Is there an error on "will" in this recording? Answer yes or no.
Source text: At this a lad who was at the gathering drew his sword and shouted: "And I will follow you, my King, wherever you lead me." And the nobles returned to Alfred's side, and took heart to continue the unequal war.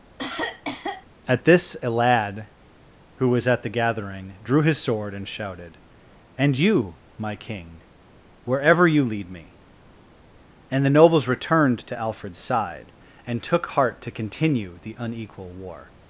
yes